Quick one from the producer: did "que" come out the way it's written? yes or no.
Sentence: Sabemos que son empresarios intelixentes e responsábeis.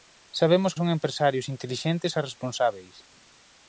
no